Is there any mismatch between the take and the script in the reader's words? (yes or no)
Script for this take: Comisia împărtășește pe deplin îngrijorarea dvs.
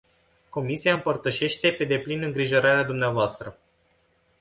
no